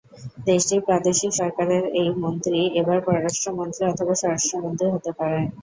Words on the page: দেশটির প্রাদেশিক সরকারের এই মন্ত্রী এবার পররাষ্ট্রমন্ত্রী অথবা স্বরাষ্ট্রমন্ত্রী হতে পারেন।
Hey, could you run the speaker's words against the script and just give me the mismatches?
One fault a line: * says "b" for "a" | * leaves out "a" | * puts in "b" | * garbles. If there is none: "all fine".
all fine